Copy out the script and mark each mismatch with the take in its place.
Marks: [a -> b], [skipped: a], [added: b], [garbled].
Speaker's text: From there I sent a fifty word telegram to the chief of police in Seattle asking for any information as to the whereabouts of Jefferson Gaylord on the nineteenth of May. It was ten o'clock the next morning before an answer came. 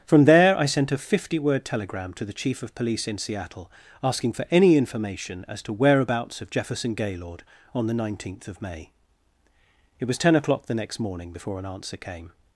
From there I sent a fifty word telegram to the chief of police in Seattle asking for any information as to [skipped: the] whereabouts of Jefferson Gaylord on the nineteenth of May. It was ten o'clock the next morning before an answer came.